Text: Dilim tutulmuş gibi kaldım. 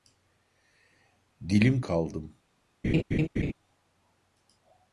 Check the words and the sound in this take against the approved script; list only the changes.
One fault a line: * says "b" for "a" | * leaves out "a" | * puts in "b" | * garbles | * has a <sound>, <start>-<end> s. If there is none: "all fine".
* leaves out "tutulmuş gibi"
* has a laugh, 2.8-3.5 s